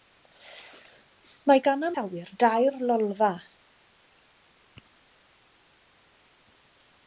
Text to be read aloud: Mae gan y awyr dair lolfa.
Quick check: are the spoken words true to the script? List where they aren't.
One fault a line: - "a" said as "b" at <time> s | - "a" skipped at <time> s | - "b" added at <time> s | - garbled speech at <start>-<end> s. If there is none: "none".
none